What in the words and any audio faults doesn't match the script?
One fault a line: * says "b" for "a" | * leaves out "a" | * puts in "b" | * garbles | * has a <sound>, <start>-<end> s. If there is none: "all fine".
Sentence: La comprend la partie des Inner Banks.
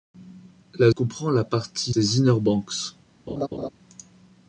* has a laugh, 3.3-3.7 s